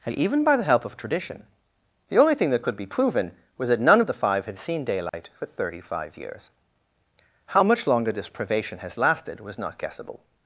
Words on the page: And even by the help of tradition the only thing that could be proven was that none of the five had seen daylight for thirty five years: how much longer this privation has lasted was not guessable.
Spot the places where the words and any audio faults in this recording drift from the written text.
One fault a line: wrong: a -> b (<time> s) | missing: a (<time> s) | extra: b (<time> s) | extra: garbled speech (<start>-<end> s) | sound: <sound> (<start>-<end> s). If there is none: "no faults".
sound: dropout (5.1-5.1 s)